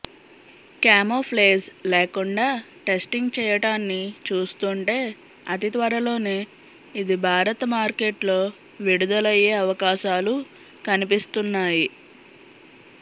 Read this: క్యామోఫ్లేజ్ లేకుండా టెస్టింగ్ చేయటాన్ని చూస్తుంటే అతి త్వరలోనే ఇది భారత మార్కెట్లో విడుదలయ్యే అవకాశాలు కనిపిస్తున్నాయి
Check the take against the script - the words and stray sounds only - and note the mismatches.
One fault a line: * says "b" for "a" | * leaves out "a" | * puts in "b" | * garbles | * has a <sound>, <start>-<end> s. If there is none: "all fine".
all fine